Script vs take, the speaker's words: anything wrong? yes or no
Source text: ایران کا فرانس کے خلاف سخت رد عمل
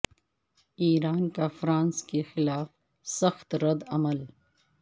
no